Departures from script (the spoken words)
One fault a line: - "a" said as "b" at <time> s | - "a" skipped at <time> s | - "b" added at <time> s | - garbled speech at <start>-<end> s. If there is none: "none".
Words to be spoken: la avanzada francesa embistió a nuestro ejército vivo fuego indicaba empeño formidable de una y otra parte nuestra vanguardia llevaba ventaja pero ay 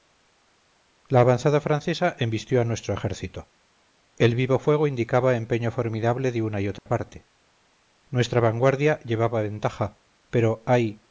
- "el" added at 4.2 s